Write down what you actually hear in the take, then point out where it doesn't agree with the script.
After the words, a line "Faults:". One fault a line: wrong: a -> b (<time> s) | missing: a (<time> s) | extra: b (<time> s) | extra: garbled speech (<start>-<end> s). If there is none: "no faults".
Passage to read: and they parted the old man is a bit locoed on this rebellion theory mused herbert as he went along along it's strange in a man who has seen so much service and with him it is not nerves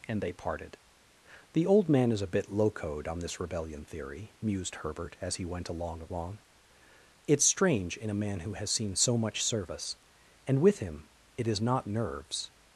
and they parted the old man is a bit locoed on this rebellion theory mused herbert as he went along along it's strange in a man who has seen so much service and with him it is not nerves
Faults:
no faults